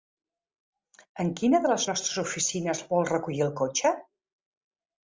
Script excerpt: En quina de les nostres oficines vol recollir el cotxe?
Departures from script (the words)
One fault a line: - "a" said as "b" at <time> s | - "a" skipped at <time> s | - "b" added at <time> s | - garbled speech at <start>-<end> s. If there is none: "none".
none